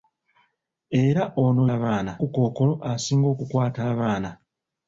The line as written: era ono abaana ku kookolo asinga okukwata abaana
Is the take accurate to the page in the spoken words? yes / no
yes